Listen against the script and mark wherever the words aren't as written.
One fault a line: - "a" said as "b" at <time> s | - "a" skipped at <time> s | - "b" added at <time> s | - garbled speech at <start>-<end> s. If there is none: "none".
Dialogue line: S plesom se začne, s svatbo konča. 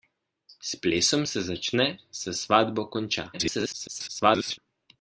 - garbled speech at 3.3-4.6 s